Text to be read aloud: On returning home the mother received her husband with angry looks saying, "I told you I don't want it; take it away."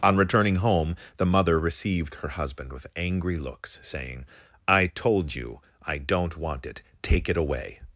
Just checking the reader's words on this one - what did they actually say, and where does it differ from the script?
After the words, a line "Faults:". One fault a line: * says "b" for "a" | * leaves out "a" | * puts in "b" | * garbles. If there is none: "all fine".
On returning home the mother received her husband with angry looks saying, "I told you I don't want it; take it away."
Faults:
all fine